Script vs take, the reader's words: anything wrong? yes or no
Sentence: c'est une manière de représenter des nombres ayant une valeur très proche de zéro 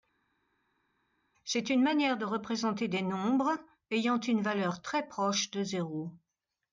no